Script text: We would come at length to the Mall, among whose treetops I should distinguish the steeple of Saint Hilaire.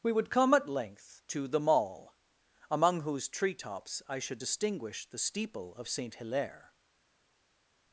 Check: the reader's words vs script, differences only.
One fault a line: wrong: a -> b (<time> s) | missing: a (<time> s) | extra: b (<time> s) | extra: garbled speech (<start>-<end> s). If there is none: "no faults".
no faults